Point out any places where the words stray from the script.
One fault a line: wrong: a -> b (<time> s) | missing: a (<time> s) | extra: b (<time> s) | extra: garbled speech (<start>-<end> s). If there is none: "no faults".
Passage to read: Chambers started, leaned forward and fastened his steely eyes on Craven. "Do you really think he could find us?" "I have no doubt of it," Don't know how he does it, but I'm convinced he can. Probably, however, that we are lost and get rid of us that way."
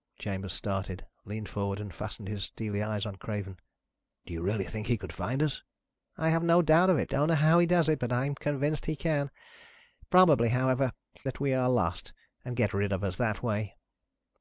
no faults